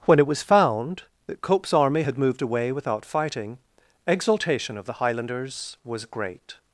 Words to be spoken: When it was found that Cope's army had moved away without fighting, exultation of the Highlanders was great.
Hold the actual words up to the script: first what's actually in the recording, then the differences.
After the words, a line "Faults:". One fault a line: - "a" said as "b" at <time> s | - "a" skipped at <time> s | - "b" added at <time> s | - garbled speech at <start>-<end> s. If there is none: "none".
When it was found that Cope's army had moved away without fighting, exultation of the Highlanders was great.
Faults:
none